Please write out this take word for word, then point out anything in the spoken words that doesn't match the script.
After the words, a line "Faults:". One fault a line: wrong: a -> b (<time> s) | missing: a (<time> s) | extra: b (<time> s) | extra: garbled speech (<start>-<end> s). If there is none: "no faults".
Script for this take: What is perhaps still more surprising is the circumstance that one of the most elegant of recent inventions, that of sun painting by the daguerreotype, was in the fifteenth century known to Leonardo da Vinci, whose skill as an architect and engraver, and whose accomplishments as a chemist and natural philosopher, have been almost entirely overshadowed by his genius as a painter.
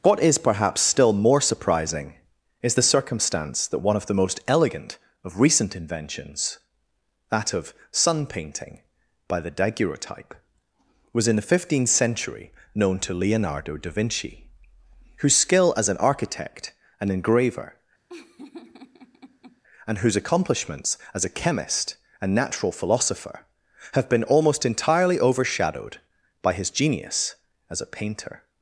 What is perhaps still more surprising is the circumstance that one of the most elegant of recent inventions, that of sun painting by the daguerreotype, was in the fifteenth century known to Leonardo da Vinci, whose skill as an architect and engraver, and whose accomplishments as a chemist and natural philosopher, have been almost entirely overshadowed by his genius as a painter.
Faults:
no faults